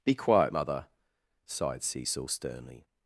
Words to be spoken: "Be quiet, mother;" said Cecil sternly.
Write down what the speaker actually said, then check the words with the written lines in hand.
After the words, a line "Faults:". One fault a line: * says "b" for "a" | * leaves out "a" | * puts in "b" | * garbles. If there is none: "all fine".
"Be quiet, mother;" sighed Cecil sternly.
Faults:
* says "sighed" for "said"